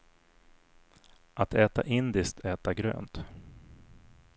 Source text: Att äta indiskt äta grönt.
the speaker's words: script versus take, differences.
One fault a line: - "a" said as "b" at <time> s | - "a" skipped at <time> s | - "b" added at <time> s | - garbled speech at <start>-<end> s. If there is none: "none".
none